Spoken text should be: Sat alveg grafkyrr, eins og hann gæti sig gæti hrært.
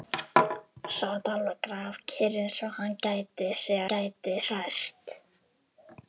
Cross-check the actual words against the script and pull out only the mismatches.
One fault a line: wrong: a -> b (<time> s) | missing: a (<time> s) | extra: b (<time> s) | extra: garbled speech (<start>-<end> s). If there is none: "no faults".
no faults